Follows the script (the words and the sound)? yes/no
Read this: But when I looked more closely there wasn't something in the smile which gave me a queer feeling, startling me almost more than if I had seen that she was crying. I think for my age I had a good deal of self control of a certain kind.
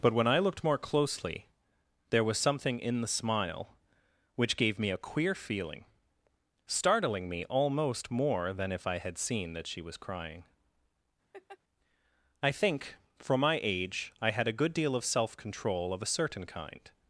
no